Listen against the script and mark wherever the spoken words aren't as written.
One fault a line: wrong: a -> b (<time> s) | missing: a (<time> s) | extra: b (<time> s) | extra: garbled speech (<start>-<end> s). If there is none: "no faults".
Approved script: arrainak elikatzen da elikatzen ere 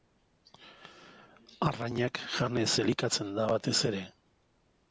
extra: janez (2.4 s)
wrong: elikatzen -> batez (3.5 s)